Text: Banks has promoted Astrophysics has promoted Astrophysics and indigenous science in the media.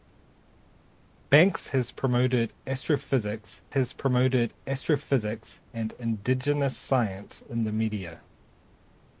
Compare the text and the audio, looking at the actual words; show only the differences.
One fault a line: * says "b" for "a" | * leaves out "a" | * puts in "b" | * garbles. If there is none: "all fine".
all fine